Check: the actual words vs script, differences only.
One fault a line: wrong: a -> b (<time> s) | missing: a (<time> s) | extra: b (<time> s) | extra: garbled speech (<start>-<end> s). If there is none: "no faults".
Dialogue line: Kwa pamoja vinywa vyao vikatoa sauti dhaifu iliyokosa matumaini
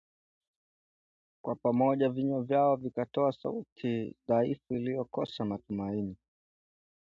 no faults